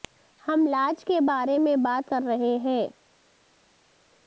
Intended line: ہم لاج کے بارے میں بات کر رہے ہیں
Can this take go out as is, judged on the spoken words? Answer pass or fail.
pass